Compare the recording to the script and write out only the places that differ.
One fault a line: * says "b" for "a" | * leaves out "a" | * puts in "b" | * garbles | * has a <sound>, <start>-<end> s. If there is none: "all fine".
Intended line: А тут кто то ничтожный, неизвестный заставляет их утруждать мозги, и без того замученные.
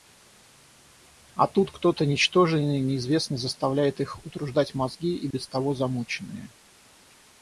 * has a dropout, 5.3-5.3 s